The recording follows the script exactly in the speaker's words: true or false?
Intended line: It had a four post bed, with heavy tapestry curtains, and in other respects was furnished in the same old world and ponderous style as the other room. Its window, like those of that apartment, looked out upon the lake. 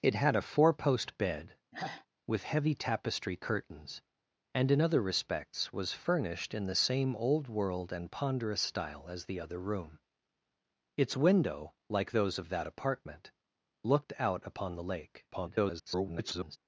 false